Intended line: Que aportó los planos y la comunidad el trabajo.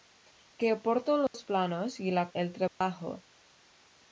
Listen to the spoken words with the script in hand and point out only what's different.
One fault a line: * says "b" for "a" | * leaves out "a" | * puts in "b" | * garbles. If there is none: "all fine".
* leaves out "comunidad"